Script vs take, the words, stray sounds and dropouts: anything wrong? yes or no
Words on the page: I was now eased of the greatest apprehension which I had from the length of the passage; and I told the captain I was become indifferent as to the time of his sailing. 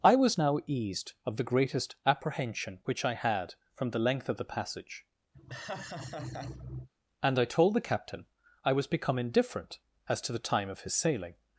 yes